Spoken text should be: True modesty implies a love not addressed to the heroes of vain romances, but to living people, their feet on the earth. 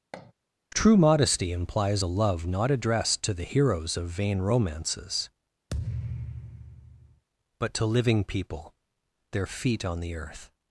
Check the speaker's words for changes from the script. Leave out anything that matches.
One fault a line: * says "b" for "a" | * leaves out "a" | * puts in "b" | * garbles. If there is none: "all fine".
all fine